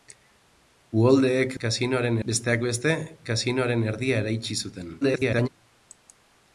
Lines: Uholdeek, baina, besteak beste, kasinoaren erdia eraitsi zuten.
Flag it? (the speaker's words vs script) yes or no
yes